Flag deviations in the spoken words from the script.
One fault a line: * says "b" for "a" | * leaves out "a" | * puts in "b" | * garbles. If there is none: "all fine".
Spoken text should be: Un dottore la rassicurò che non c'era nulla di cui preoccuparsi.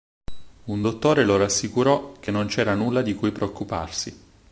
* says "lo" for "la"